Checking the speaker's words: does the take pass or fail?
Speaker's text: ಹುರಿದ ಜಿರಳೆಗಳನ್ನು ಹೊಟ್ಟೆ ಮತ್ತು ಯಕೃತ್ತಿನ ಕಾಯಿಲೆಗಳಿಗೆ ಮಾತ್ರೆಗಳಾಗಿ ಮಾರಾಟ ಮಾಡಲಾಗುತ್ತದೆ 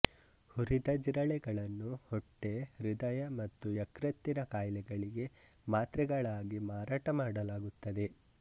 fail